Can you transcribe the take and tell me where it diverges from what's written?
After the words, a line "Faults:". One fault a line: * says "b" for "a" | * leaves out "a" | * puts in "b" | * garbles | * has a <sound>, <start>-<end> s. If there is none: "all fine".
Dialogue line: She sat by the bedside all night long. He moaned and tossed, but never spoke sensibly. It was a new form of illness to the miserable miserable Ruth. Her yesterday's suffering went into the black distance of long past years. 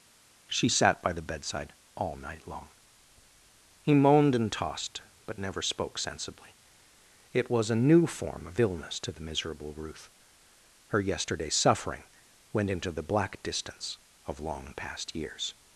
She sat by the bedside all night long. He moaned and tossed, but never spoke sensibly. It was a new form of illness to the miserable Ruth. Her yesterday's suffering went into the black distance of long past years.
Faults:
* leaves out "miserable"